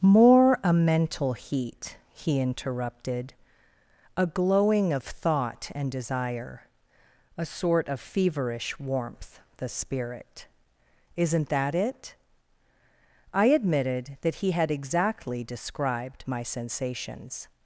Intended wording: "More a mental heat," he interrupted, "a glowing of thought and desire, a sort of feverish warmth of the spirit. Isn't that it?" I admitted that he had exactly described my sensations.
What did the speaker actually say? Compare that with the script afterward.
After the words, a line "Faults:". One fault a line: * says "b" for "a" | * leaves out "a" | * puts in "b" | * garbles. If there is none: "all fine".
"More a mental heat," he interrupted, "a glowing of thought and desire, a sort of feverish warmth the spirit. Isn't that it?" I admitted that he had exactly described my sensations.
Faults:
* leaves out "of"